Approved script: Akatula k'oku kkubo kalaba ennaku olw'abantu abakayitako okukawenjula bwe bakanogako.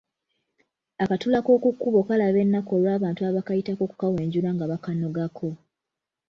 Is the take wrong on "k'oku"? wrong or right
right